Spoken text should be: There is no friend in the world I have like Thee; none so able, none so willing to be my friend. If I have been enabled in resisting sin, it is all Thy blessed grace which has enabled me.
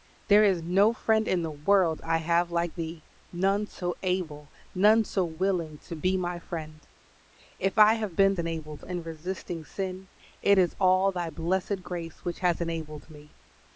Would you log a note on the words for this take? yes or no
no